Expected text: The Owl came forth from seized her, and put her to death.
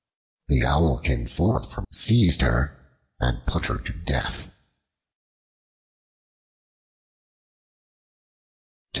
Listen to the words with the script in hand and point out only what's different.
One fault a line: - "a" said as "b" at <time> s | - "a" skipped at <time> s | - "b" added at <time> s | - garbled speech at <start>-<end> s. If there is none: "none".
none